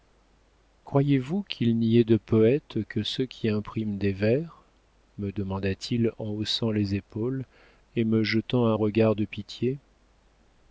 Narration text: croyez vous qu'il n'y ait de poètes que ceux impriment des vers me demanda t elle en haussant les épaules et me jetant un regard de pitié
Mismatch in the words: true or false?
true